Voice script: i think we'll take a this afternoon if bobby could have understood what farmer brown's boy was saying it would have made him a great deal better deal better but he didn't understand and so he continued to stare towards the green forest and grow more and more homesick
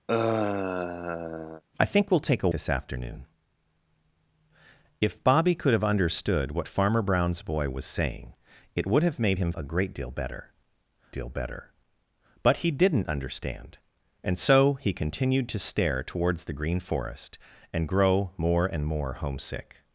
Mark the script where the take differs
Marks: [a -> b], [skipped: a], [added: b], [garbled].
i think we'll take a this afternoon if bobby could have understood what farmer brown's boy was saying it would have made him a great deal better deal better but he didn't understand and so he continued to stare towards the green forest and grow more and more homesick